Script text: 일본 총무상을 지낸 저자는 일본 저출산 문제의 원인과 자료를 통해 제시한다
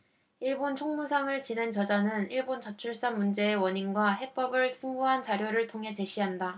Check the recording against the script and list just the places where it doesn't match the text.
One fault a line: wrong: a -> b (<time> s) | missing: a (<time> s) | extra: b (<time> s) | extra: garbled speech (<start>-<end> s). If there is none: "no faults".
extra: 해법을 풍부한 (4.1 s)